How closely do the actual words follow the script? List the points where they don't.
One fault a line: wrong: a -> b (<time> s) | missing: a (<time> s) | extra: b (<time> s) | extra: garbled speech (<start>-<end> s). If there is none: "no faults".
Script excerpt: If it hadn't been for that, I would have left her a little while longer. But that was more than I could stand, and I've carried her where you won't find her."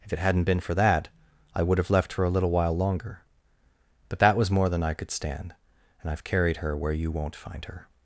no faults